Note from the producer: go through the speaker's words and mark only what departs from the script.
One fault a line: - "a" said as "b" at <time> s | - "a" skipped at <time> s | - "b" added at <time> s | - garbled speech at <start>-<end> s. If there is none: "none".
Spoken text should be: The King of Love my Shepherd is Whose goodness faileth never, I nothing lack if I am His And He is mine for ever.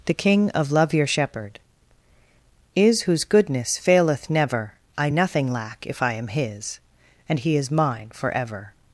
- "my" said as "your" at 0.9 s